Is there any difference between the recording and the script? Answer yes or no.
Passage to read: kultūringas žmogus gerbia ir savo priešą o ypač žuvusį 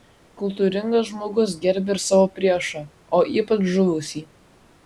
no